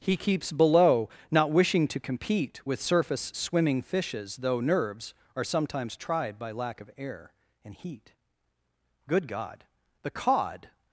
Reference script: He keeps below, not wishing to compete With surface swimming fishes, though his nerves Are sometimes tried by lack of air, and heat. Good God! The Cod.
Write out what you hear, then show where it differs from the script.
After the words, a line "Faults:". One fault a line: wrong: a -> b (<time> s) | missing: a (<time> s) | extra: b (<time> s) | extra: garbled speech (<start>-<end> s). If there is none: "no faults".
He keeps below, not wishing to compete With surface swimming fishes, though nerves Are sometimes tried by lack of air, and heat. Good God! The Cod.
Faults:
missing: his (4.6 s)